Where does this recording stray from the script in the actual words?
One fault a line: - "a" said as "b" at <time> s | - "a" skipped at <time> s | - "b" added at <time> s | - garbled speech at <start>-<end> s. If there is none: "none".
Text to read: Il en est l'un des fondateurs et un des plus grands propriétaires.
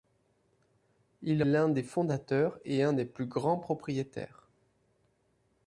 - "en est" skipped at 1.4 s